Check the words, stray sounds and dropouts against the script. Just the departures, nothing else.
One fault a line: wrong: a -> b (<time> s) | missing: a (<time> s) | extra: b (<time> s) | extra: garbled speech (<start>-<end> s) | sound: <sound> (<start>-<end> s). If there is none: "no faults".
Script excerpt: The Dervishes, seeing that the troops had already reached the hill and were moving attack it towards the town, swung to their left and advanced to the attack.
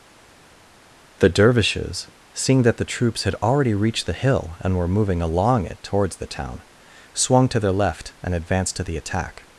wrong: attack -> along (5.2 s)